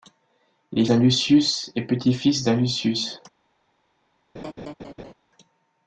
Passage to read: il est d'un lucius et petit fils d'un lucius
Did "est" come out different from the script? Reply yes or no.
no